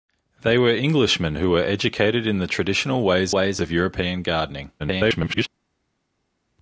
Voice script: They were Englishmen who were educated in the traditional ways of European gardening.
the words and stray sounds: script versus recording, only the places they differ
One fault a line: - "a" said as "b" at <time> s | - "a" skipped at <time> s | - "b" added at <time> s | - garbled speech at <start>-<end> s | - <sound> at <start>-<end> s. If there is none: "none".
- "ways" added at 3.3 s
- garbled speech at 4.8-5.5 s